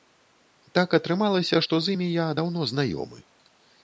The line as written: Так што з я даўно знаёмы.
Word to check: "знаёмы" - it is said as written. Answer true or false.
true